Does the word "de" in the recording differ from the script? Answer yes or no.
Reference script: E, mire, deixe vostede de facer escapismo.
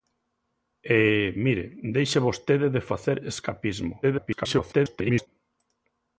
no